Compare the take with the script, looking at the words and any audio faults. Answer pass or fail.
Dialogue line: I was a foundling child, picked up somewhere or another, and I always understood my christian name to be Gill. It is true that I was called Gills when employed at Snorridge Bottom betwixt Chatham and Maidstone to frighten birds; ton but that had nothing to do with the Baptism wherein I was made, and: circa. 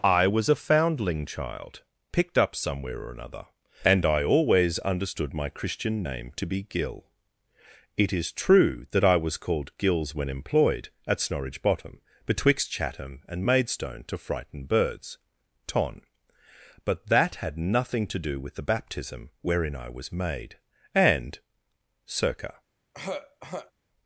fail